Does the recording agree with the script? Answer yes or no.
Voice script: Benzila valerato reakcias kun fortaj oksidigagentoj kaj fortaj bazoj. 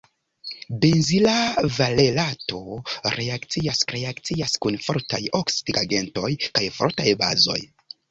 no